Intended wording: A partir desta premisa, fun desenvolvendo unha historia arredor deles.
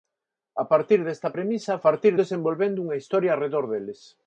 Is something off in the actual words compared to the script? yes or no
yes